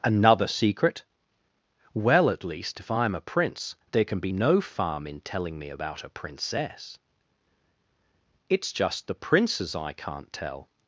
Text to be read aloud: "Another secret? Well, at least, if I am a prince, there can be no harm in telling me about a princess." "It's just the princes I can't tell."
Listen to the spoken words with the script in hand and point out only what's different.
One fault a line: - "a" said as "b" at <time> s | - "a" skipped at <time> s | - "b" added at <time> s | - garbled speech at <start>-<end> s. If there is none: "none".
- "harm" said as "farm" at 4.6 s